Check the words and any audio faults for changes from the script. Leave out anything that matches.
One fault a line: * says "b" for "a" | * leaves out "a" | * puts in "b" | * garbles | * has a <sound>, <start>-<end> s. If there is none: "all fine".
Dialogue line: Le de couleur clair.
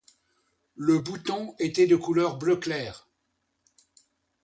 * puts in "bouton était"
* puts in "bleu"